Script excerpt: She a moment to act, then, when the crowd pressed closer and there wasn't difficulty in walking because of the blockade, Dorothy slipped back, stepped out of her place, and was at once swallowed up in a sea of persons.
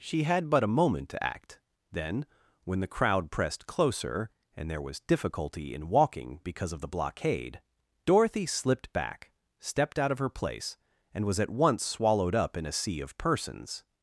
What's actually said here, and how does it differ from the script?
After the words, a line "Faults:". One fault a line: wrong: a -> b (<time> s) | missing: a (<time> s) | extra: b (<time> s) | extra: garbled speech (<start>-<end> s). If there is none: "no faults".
She had but a moment to act, then, when the crowd pressed closer and there was difficulty in walking because of the blockade, Dorothy slipped back, stepped out of her place, and was at once swallowed up in a sea of persons.
Faults:
extra: had but (0.2 s)
wrong: wasn't -> was (4.8 s)